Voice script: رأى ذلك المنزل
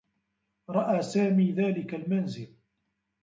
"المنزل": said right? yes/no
yes